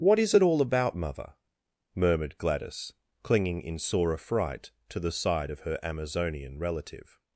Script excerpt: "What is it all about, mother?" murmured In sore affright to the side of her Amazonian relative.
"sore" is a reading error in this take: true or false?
false